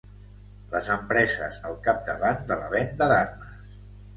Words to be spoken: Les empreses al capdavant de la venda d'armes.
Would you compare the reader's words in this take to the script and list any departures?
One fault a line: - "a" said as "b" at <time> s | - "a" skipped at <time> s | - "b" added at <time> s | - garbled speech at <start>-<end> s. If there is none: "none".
none